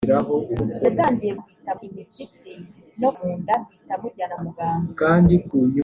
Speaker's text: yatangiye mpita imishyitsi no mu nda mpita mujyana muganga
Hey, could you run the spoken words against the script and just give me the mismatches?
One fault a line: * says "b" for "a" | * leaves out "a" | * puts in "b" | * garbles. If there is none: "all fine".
all fine